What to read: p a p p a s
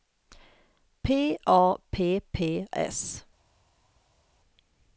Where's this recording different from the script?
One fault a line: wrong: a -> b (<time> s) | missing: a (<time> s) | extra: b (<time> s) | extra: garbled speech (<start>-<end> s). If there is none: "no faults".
missing: a (2.6 s)